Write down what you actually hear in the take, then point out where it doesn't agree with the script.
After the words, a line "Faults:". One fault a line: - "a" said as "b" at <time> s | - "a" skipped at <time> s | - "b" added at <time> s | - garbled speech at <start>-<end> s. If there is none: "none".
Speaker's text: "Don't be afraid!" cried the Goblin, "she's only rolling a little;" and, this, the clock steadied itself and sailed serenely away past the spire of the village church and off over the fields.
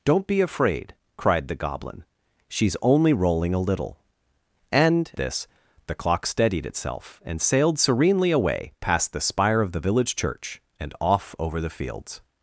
"Don't be afraid!" cried the Goblin, "she's only rolling a little;" and, this, the clock steadied itself and sailed serenely away past the spire of the village church and off over the fields.
Faults:
none